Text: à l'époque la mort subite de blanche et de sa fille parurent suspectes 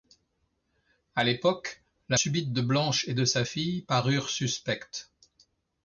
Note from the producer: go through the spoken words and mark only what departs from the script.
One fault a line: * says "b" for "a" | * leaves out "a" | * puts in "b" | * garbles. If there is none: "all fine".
* leaves out "mort"